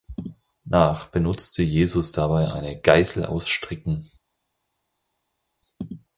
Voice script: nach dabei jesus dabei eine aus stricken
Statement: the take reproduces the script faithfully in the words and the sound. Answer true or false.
false